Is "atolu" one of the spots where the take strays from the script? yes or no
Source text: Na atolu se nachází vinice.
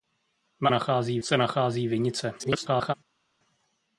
yes